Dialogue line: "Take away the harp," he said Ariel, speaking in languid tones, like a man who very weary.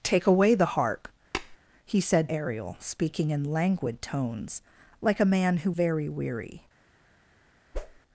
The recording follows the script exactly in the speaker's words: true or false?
true